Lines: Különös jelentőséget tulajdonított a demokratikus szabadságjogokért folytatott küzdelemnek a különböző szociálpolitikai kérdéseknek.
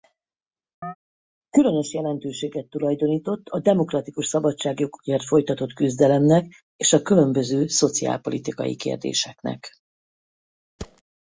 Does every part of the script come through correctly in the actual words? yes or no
no